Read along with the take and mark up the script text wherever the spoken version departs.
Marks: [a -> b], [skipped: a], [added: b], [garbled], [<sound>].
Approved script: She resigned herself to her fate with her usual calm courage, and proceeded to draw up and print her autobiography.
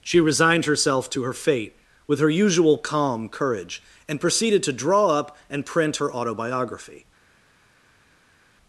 She resigned herself to her fate with her usual calm courage, and proceeded to draw up and print her autobiography.